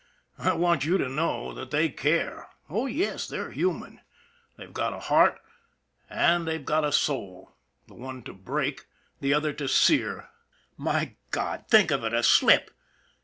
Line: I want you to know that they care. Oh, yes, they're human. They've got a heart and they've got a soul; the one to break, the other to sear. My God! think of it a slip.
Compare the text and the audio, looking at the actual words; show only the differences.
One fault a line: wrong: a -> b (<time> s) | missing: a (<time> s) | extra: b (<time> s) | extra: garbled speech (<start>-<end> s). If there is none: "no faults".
no faults